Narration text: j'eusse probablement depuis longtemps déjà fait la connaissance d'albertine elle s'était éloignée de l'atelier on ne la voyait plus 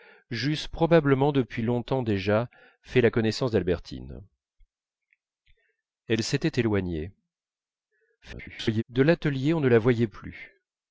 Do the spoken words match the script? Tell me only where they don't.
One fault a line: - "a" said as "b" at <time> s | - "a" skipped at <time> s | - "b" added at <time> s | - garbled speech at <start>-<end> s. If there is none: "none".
- garbled speech at 8.2-8.8 s